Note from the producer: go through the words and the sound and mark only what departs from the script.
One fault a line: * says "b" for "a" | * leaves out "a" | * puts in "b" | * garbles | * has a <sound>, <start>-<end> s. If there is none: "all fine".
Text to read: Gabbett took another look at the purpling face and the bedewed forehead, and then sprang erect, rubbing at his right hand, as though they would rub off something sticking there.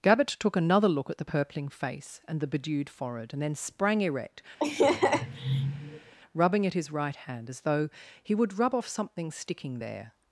* has a laugh, 4.6-6.1 s
* says "he" for "they"